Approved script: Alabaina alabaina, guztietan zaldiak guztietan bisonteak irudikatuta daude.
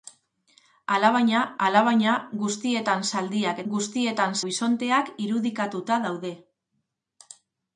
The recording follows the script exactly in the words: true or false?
true